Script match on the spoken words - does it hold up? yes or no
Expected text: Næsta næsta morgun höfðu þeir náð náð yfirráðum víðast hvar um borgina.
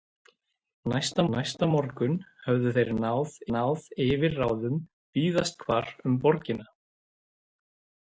yes